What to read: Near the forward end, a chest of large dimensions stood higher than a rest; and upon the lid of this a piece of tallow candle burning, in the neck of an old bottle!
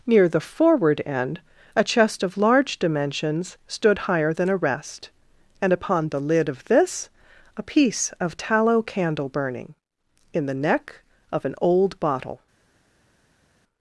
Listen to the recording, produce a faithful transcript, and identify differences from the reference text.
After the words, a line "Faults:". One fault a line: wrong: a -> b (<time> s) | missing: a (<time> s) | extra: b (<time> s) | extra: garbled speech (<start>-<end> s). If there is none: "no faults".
Near the forward end, a chest of large dimensions stood higher than a rest; and upon the lid of this a piece of tallow candle burning, in the neck of an old bottle!
Faults:
no faults